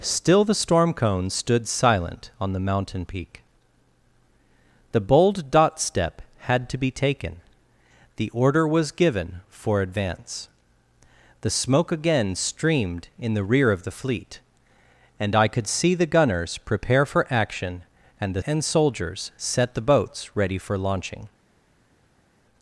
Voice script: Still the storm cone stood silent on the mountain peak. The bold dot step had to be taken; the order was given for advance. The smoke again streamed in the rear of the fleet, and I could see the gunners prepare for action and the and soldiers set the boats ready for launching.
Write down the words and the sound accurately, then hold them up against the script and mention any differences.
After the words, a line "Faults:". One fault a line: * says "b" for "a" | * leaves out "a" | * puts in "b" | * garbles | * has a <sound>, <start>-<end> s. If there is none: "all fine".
Still the storm cone stood silent on the mountain peak. The bold dot step had to be taken; the order was given for advance. The smoke again streamed in the rear of the fleet, and I could see the gunners prepare for action and the and soldiers set the boats ready for launching.
Faults:
all fine